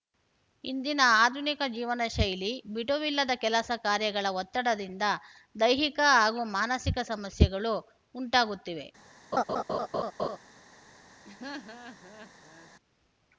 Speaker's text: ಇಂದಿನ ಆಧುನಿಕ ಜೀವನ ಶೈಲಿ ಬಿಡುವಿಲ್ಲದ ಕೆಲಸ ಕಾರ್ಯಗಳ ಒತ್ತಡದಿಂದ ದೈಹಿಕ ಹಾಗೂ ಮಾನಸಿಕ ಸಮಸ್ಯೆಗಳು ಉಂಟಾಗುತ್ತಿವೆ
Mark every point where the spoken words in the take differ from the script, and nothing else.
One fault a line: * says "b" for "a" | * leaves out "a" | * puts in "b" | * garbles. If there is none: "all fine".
all fine